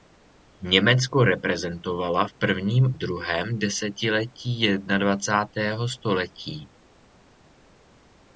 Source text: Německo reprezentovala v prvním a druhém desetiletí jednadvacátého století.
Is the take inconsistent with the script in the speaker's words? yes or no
yes